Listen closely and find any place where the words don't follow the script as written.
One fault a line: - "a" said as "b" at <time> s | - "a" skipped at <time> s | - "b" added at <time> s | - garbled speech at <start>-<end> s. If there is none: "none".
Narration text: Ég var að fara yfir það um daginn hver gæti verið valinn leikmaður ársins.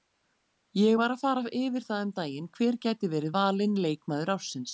none